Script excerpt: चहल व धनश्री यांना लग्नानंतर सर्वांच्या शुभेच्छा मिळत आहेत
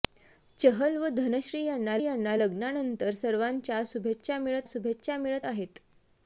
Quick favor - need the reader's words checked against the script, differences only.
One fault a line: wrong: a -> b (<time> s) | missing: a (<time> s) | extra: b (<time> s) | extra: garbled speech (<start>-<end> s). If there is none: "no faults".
extra: यांना (2.0 s)
extra: शुभेच्छा मिळत (4.7 s)